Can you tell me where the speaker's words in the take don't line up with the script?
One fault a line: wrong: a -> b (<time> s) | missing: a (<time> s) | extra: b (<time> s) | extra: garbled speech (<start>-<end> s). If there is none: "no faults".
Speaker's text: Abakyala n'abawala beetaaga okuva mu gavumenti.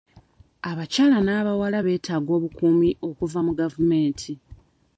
extra: obukuumi (2.4 s)